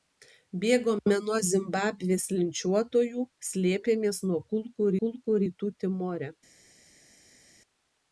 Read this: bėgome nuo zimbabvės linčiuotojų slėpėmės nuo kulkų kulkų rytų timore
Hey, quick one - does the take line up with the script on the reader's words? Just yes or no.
yes